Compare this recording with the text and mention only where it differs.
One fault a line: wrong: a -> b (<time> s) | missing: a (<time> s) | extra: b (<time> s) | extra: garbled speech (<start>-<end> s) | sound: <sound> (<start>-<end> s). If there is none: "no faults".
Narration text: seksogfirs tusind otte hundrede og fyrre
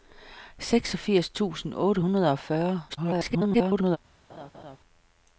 extra: garbled speech (2.9-4.0 s)
sound: laugh (4.3-4.8 s)